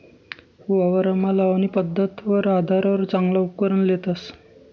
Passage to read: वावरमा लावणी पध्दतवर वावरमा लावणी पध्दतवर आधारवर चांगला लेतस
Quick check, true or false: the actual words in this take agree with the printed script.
false